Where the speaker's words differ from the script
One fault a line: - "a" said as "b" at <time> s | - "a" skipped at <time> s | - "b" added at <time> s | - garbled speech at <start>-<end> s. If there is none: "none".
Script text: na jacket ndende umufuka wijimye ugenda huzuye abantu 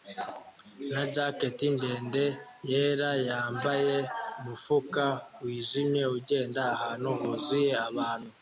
- "yera yambaye" added at 2.7 s
- "ahantu" added at 6.7 s